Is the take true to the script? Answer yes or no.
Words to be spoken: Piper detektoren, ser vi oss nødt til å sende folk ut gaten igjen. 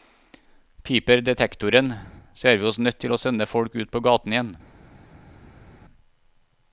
no